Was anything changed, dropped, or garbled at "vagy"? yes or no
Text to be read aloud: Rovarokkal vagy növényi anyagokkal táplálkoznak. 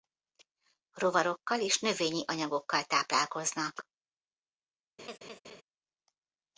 yes